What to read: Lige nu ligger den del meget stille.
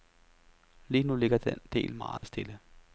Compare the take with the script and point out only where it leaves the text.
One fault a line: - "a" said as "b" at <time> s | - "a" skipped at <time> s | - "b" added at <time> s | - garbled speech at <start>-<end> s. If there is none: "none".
none